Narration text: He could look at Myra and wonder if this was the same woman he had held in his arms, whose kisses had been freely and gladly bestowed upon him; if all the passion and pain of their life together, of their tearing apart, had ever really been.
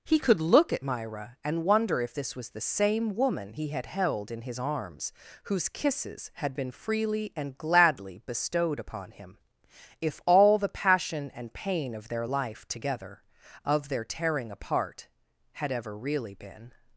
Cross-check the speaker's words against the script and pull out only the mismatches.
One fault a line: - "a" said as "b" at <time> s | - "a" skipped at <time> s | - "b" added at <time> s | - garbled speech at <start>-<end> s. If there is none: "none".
none